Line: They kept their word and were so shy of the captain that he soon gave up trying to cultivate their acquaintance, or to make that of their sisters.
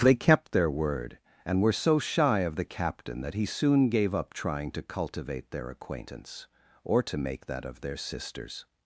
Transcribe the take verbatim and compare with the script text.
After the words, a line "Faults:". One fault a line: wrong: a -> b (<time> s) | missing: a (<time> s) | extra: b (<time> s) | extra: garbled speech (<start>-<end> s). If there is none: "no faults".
They kept their word and were so shy of the captain that he soon gave up trying to cultivate their acquaintance, or to make that of their sisters.
Faults:
no faults